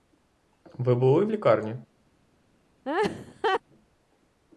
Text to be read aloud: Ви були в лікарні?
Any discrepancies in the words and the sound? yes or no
yes